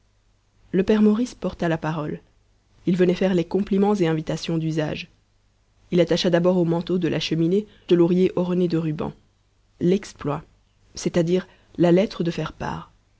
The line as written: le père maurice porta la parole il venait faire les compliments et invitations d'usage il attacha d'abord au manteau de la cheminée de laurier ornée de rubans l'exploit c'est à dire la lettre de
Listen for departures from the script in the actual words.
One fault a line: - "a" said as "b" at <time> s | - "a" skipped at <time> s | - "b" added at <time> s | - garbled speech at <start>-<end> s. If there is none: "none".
none